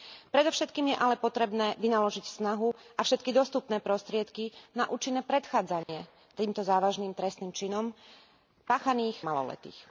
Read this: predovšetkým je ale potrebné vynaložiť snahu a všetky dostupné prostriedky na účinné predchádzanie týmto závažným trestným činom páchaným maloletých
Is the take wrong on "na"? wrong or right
right